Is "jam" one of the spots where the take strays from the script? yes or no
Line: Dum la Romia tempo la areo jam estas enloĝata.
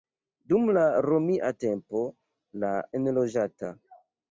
yes